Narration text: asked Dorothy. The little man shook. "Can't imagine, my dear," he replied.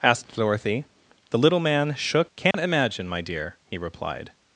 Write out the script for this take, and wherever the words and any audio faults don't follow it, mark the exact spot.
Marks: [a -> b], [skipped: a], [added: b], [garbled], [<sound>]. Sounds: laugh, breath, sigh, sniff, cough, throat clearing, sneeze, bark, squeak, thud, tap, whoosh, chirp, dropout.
asked Dorothy. The little man shook. "Can't [dropout] imagine, my dear," he replied.